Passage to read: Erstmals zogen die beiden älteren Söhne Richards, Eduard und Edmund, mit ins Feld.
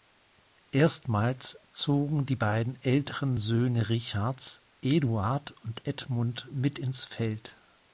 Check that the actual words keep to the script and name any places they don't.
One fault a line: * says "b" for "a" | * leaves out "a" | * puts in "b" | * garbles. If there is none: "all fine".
all fine